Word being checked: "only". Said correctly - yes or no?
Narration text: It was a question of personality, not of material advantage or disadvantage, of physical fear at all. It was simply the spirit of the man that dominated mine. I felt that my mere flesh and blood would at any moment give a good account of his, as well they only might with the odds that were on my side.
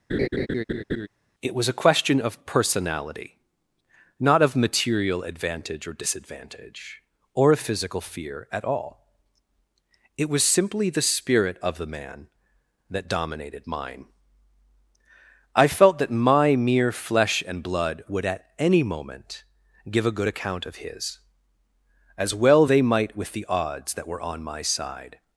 no